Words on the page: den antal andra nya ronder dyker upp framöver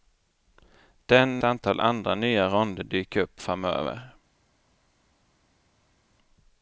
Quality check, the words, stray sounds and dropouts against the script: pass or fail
pass